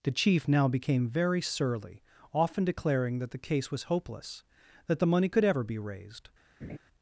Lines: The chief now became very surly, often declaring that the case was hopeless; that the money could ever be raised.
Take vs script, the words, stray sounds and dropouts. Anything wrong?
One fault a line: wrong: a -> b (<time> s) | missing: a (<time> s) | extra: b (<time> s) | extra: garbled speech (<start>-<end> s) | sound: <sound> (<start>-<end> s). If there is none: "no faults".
sound: laugh (6.6-6.8 s)